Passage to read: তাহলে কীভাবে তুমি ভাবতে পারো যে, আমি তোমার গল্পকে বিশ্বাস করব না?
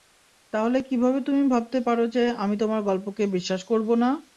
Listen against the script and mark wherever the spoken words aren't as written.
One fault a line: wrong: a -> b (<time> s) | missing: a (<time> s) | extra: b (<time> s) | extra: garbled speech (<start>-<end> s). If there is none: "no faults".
no faults